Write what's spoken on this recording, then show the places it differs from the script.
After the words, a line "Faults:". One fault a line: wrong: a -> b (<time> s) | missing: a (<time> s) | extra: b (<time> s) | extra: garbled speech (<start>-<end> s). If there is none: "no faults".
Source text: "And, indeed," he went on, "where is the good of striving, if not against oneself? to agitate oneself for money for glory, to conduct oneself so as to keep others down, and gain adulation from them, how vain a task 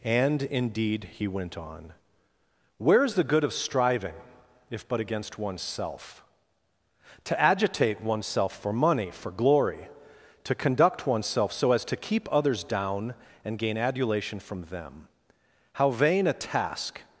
"And, indeed," he went on, "where is the good of striving, if but against oneself? to agitate oneself for money for glory, to conduct oneself so as to keep others down, and gain adulation from them, how vain a task
Faults:
wrong: not -> but (4.9 s)